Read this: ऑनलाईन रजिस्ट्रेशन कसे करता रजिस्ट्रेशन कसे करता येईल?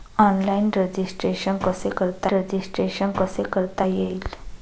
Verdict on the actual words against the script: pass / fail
pass